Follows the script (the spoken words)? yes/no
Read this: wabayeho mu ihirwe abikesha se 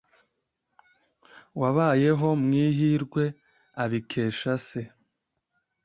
yes